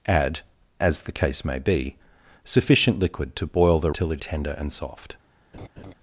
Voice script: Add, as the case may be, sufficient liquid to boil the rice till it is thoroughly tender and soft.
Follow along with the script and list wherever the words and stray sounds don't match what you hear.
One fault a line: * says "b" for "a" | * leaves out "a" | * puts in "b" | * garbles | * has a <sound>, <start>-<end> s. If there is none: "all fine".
* leaves out "rice"
* leaves out "is thoroughly"
* has a laugh, 5.5-5.9 s